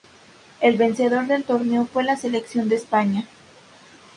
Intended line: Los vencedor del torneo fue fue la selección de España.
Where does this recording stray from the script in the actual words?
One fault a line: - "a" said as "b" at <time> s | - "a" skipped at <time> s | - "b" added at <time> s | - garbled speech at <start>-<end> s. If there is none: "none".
- "Los" said as "El" at 0.6 s
- "fue" skipped at 2.0 s